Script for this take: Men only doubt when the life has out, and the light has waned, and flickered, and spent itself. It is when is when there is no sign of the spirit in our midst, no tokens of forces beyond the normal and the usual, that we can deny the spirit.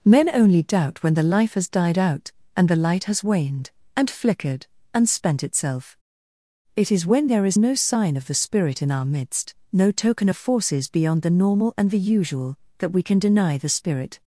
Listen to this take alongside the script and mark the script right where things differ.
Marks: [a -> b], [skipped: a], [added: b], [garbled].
Men only doubt when the life has [added: died] out, and the light has waned, and flickered, and spent itself. It is when [skipped: is when] there is no sign of the spirit in our midst, no [tokens -> token] of forces beyond the normal and the usual, that we can deny the spirit.